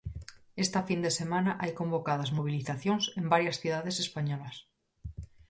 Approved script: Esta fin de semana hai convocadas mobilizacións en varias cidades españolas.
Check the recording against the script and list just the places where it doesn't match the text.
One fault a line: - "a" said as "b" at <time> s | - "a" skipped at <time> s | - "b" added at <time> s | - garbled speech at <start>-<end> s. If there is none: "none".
none